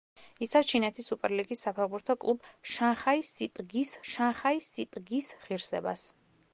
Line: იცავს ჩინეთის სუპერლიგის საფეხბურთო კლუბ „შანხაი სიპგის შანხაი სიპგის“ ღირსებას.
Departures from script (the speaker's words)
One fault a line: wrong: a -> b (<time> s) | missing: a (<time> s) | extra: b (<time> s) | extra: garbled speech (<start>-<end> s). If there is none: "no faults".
no faults